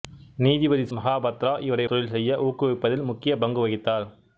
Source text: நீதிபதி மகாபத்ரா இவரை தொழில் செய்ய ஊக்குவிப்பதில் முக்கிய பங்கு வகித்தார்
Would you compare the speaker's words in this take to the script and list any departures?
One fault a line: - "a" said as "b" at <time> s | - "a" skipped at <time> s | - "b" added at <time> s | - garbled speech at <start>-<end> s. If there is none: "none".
none